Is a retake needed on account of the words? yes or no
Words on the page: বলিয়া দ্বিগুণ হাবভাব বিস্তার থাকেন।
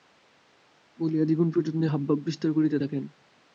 yes